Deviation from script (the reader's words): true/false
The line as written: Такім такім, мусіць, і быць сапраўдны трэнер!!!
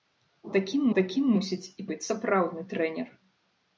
false